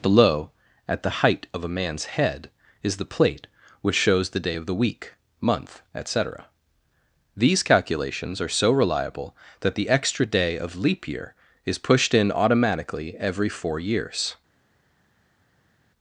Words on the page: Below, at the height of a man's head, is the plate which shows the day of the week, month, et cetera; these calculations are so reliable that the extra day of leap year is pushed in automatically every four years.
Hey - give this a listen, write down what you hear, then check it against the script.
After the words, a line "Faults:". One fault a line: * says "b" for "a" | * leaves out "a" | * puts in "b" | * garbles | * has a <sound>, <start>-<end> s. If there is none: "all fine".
Below, at the height of a man's head, is the plate which shows the day of the week, month, et cetera; these calculations are so reliable that the extra day of leap year is pushed in automatically every four years.
Faults:
all fine